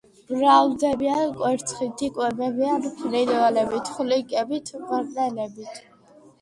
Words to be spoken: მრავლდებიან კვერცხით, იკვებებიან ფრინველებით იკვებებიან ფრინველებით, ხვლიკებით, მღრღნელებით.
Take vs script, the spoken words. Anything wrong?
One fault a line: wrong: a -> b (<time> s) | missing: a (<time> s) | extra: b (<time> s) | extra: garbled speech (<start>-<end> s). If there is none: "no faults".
missing: იკვებებიან ფრინველებით (3.9 s)